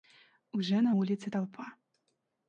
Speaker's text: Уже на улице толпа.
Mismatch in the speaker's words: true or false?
false